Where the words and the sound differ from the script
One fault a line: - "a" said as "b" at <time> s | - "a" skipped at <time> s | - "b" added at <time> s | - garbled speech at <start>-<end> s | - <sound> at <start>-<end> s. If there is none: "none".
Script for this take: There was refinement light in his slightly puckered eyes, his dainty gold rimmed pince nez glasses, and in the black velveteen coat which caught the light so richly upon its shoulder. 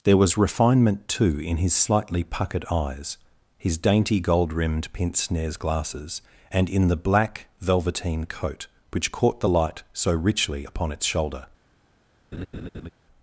- "light" said as "too" at 1.1 s
- laugh at 12.3-12.9 s